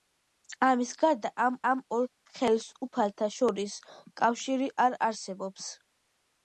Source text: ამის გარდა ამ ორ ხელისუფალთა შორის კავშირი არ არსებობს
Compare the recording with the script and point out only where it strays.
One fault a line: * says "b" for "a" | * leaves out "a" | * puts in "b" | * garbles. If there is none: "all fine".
* puts in "ამ"